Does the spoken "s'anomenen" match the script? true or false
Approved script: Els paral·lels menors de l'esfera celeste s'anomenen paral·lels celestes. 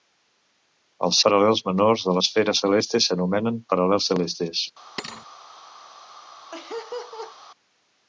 true